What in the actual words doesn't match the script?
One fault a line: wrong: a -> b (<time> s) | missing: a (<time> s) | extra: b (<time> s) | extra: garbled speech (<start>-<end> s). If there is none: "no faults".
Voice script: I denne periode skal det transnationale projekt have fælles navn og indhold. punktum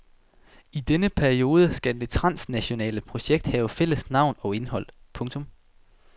no faults